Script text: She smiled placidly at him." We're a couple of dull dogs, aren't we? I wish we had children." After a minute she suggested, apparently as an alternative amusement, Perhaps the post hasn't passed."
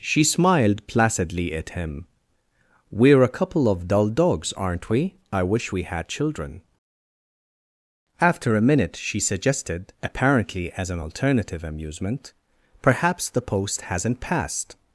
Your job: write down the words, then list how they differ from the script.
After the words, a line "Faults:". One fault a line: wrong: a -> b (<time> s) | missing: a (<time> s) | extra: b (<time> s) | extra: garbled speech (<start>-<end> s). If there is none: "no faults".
She smiled placidly at him." We're a couple of dull dogs, aren't we? I wish we had children." After a minute she suggested, apparently as an alternative amusement, Perhaps the post hasn't passed."
Faults:
no faults